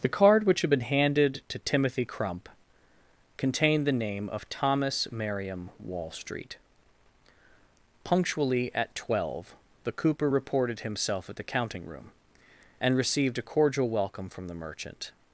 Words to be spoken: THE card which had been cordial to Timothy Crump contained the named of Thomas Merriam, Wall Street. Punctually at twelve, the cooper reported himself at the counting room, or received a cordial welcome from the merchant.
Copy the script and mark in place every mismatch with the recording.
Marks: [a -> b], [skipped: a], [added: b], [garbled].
THE card which had been [cordial -> handed] to Timothy Crump contained the [named -> name] of Thomas Merriam, Wall Street. Punctually at twelve, the cooper reported himself at the counting room, [or -> and] received a cordial welcome from the merchant.